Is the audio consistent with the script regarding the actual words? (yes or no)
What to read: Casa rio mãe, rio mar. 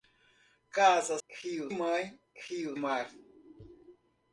yes